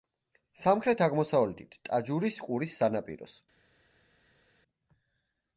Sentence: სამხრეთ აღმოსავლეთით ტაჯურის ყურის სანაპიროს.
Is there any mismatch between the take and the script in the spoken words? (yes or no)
no